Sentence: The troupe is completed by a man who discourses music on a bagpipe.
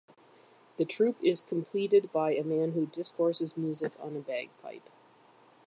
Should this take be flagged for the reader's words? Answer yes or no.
no